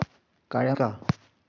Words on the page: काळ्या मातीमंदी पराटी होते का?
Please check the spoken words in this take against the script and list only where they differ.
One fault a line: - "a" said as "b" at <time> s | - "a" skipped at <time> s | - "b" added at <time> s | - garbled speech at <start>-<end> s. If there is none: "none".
- "मातीमंदी पराटी होते" skipped at 0.8 s